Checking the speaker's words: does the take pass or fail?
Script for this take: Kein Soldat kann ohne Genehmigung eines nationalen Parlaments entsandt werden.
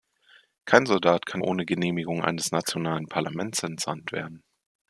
pass